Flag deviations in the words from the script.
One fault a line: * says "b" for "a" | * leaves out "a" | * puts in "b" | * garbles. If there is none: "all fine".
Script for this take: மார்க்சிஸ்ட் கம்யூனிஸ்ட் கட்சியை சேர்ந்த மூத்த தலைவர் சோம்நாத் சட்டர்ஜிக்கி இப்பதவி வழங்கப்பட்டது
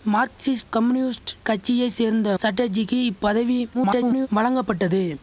* leaves out "மூத்த தலைவர் சோம்நாத்"
* garbles